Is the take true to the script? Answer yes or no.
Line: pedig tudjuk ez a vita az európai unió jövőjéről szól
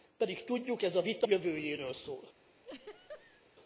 no